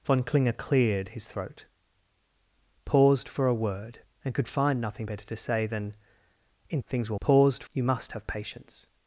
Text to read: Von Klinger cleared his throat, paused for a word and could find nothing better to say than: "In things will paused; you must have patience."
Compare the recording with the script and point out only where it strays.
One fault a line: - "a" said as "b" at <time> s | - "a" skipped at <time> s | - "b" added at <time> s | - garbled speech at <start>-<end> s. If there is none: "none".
none